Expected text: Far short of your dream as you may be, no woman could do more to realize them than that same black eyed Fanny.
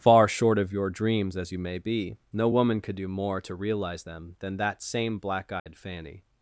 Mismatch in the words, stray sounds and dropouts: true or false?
true